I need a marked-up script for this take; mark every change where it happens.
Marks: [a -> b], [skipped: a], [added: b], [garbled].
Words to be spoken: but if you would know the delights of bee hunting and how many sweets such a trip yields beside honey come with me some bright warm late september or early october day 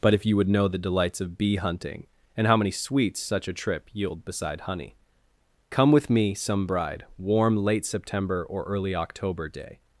but if you would know the delights of bee hunting and how many sweets such a trip [yields -> yield] beside honey come with me some [bright -> bride] warm late september or early october day